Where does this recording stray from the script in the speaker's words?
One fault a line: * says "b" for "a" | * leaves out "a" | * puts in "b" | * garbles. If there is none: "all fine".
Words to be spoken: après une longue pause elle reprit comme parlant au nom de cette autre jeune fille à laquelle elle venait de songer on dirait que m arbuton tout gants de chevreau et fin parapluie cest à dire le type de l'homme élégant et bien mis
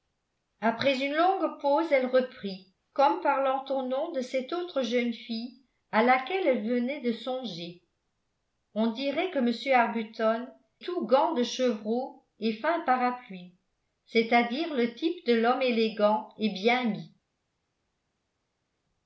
all fine